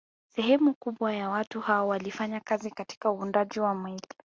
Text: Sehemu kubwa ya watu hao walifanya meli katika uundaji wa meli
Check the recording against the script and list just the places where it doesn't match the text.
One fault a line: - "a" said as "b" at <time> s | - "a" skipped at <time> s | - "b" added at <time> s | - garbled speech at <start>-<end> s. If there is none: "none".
- "meli" said as "kazi" at 2.4 s